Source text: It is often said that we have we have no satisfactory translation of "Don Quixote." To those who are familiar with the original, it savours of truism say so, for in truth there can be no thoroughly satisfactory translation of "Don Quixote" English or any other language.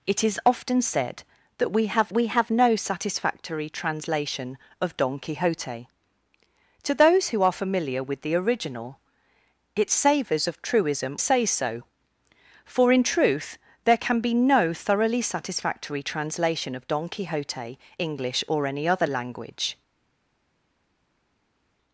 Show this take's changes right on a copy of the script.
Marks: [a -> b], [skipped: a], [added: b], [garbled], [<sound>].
It is often said that we have we have no satisfactory translation of "Don Quixote." To those who are familiar with the original, it savours of truism say so, for in truth there can be no thoroughly satisfactory translation of "Don Quixote" English or any other language.